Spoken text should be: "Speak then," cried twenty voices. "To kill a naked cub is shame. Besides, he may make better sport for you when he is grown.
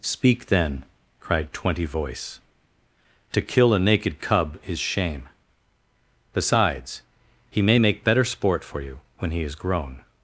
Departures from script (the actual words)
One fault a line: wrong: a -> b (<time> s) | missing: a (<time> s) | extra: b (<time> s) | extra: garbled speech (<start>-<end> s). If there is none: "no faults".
wrong: voices -> voice (1.9 s)